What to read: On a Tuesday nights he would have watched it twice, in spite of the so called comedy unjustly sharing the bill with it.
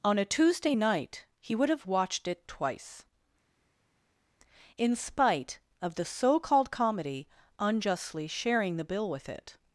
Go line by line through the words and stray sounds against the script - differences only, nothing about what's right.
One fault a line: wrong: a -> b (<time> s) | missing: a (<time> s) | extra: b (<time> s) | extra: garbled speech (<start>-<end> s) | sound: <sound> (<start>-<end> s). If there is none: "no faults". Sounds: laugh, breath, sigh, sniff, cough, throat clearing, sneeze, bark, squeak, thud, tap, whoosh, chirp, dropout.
wrong: nights -> night (0.7 s)